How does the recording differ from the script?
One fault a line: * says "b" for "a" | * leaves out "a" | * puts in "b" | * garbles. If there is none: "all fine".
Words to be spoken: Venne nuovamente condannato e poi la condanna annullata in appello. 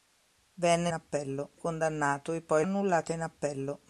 * says "appello" for "nuovamente"
* leaves out "la condanna"